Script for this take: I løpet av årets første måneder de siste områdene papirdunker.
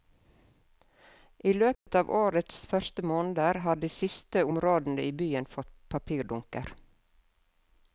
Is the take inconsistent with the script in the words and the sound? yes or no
yes